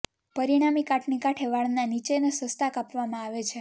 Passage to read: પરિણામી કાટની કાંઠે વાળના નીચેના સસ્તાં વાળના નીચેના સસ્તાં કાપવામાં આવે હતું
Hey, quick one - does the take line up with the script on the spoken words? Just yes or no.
no